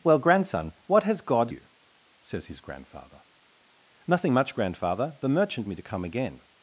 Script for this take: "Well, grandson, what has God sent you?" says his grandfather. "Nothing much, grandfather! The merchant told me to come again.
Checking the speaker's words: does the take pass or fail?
fail